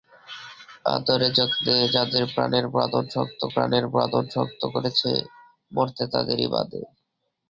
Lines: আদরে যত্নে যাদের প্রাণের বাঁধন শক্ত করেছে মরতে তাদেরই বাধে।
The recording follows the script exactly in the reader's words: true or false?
false